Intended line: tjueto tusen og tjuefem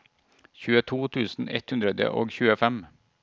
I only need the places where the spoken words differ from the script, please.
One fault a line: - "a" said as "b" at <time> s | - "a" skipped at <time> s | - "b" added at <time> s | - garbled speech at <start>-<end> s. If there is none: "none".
- "ett hundre" added at 1.6 s